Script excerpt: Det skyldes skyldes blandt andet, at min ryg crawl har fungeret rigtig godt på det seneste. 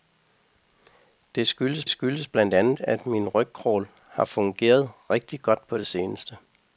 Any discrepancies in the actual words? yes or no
no